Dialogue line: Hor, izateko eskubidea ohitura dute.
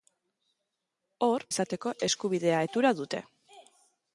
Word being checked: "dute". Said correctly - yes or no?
yes